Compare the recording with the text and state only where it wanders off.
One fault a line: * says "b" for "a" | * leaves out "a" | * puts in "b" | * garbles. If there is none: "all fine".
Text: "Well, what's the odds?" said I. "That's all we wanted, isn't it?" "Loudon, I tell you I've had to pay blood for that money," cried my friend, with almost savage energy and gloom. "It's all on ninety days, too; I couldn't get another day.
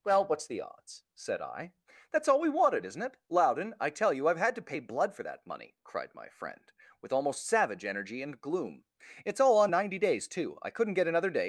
all fine